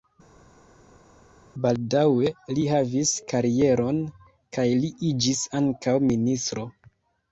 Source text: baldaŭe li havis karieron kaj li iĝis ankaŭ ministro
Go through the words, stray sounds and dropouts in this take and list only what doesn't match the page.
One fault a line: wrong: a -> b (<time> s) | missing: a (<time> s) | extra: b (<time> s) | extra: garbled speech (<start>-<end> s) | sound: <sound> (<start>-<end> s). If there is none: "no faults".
no faults